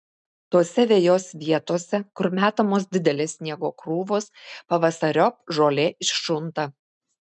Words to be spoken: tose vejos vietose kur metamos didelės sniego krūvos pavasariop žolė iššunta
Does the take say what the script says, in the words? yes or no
yes